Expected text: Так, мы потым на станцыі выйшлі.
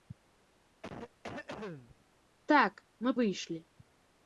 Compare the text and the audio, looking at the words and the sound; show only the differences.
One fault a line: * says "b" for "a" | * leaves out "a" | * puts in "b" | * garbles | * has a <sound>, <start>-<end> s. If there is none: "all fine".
* has a cough, 0.8-2.0 s
* leaves out "потым на станцыі"